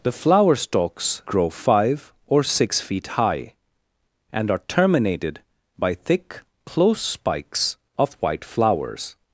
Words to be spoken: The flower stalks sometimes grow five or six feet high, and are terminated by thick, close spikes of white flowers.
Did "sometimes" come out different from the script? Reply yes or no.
yes